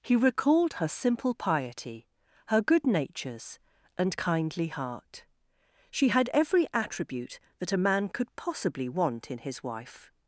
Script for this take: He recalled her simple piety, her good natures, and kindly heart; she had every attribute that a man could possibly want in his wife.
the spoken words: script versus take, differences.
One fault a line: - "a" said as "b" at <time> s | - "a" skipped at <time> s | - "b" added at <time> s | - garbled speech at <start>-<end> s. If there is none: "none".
none